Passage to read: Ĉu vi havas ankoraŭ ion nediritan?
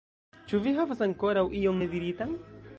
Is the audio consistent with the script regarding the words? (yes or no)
yes